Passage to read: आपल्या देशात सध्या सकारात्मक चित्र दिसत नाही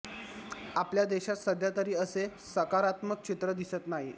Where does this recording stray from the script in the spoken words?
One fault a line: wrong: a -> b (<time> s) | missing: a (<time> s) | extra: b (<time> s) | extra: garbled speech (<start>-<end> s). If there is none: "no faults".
extra: तरी असे (1.7 s)